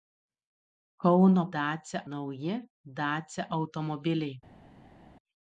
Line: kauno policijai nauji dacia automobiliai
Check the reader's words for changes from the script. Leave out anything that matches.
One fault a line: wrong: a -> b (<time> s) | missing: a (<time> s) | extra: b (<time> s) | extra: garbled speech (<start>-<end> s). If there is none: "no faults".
wrong: policijai -> dacia (1.6 s)